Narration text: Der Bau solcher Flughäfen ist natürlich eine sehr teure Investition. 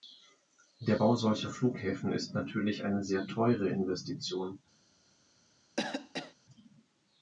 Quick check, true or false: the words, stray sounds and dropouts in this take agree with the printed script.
false